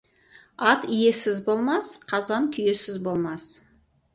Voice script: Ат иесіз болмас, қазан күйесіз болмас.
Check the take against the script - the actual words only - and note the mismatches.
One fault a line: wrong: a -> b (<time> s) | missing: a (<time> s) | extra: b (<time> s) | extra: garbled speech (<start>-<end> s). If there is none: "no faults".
no faults